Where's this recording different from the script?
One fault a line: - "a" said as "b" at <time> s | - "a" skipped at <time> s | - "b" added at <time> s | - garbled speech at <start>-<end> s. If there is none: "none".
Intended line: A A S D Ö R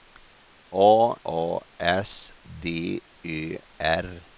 none